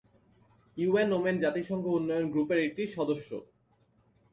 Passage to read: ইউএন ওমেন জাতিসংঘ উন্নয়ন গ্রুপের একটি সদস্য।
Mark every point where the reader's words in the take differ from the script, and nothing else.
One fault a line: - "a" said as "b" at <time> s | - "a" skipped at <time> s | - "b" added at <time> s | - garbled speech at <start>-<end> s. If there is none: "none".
none